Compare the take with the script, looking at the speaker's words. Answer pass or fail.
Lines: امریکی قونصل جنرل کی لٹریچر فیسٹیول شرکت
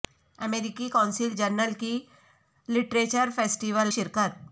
pass